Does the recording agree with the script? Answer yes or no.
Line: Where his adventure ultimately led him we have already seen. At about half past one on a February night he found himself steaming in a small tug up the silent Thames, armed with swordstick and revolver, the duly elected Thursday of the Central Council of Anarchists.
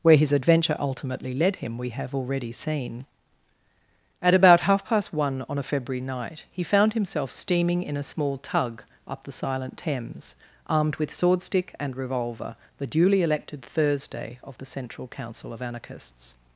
yes